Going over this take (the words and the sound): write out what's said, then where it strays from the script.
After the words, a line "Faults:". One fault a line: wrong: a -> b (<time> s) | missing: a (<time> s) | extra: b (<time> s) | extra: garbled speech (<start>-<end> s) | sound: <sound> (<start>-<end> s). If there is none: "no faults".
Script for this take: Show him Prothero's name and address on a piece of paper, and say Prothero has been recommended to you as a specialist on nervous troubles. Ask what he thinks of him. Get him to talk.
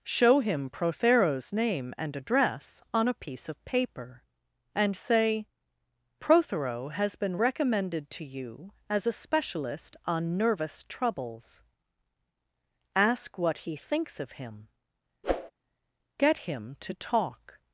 Show him Prothero's name and address on a piece of paper, and say Prothero has been recommended to you as a specialist on nervous troubles. Ask what he thinks of him. Get him to talk.
Faults:
sound: whoosh (15.2-15.5 s)